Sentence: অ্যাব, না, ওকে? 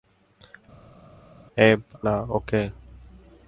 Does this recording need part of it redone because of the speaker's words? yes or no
no